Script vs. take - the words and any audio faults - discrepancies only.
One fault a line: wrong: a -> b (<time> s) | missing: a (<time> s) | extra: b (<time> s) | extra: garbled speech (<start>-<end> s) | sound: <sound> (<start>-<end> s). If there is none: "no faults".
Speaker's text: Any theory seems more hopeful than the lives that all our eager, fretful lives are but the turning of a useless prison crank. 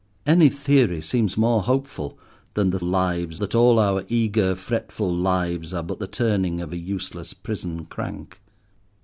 no faults